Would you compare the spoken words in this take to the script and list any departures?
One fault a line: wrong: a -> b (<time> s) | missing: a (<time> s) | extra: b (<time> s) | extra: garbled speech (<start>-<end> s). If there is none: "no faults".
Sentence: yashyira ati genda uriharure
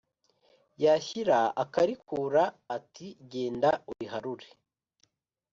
extra: akarikura (1.6 s)